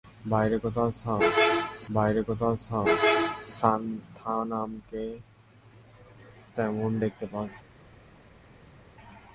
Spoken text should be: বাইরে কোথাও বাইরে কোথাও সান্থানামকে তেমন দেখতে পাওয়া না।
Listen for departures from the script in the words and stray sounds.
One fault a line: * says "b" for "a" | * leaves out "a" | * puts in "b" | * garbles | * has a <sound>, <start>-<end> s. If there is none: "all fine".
all fine